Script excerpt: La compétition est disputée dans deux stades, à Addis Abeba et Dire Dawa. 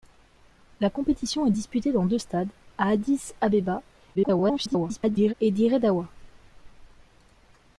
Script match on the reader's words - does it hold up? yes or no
no